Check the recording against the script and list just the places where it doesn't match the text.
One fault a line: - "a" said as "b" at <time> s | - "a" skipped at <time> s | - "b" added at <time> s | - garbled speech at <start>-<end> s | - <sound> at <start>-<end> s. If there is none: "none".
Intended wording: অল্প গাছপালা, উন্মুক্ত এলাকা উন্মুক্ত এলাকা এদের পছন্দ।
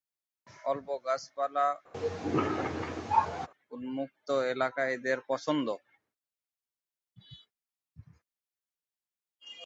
- cough at 1.9-3.5 s
- "উন্মুক্ত এলাকা" skipped at 4.8 s